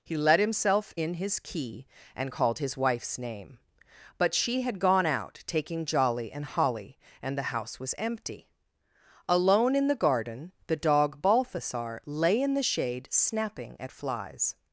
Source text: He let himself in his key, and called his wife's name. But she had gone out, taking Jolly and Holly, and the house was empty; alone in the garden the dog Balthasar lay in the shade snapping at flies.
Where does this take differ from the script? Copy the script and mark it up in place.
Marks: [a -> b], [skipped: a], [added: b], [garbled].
He let himself in his key, and called his wife's name. But she had gone out, taking Jolly and Holly, and the house was empty; alone in the garden the dog Balthasar lay in the shade snapping at flies.